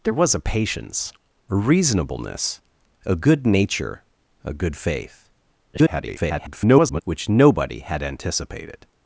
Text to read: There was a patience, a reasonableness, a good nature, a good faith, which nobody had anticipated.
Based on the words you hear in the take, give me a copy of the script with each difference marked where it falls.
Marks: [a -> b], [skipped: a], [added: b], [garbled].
There was a patience, a reasonableness, a good nature, a good faith, [garbled] which nobody had anticipated.